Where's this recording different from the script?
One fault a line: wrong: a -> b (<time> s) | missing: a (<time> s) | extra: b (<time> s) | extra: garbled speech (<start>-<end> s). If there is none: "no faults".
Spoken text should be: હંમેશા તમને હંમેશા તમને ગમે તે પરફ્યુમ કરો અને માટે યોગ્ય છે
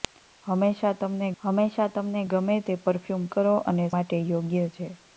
no faults